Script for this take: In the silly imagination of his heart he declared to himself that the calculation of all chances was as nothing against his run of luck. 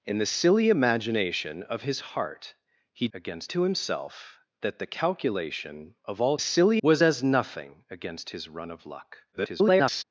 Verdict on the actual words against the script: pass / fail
fail